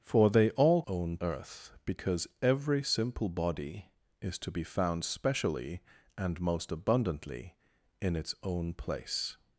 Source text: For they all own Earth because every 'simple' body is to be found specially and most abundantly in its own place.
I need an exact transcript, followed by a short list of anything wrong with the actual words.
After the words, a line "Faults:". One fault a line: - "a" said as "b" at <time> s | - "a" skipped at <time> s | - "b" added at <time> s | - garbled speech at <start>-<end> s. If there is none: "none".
For they all own Earth because every 'simple' body is to be found specially and most abundantly in its own place.
Faults:
none